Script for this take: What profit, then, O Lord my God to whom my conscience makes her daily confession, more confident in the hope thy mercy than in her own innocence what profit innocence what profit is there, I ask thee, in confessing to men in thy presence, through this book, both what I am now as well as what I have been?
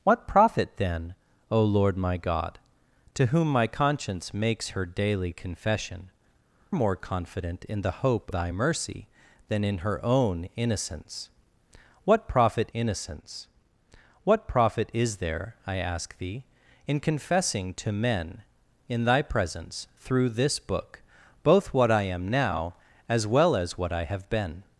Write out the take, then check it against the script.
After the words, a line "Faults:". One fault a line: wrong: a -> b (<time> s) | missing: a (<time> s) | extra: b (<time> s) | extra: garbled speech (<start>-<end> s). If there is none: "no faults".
What profit, then, O Lord my God to whom my conscience makes her daily confession, more confident in the hope thy mercy than in her own innocence what profit innocence what profit is there, I ask thee, in confessing to men in thy presence, through this book, both what I am now as well as what I have been?
Faults:
no faults